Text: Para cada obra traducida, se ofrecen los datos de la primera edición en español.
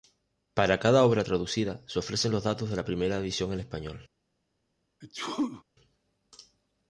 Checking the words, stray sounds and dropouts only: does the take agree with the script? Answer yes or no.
no